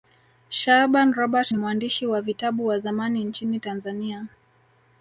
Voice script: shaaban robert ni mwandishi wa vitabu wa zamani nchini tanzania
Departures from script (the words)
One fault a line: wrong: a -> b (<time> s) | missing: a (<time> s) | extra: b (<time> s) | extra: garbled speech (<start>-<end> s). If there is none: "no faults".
no faults